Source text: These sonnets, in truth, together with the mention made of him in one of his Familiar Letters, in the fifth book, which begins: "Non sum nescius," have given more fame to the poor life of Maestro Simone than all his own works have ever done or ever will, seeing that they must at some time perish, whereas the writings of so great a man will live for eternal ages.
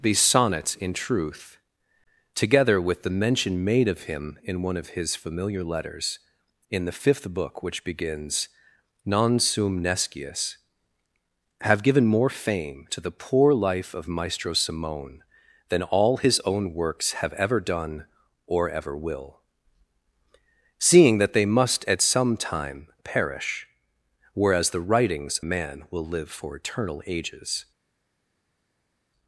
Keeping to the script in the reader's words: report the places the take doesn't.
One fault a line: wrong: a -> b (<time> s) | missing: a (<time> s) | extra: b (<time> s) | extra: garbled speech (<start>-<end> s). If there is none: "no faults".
missing: of so great (25.4 s)